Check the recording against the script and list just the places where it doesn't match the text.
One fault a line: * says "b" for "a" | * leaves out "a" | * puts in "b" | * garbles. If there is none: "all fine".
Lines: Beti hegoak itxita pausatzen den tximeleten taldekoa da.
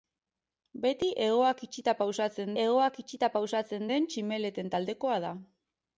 * puts in "hegoak itxita pausatzen"